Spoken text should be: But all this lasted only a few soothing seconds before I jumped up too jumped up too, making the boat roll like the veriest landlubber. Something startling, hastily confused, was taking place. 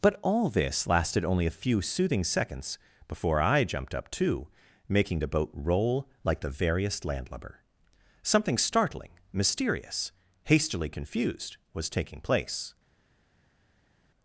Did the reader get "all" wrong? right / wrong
right